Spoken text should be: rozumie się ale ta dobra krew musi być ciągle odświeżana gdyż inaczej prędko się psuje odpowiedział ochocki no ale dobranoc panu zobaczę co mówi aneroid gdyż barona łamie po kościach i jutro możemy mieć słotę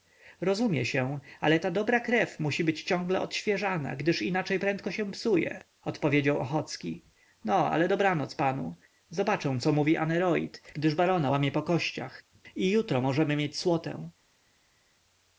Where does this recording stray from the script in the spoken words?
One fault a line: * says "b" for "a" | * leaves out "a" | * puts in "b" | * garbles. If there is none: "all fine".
all fine